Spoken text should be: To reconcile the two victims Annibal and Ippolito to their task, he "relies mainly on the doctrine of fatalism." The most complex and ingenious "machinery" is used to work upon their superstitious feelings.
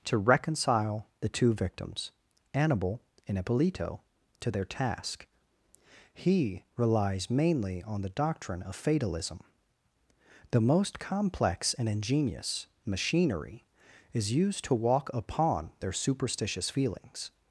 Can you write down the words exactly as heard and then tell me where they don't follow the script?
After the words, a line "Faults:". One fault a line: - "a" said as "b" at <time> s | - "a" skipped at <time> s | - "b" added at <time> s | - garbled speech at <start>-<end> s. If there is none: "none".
To reconcile the two victims Annibal and Ippolito to their task, he "relies mainly on the doctrine of fatalism." The most complex and ingenious "machinery" is used to walk upon their superstitious feelings.
Faults:
- "work" said as "walk" at 14.7 s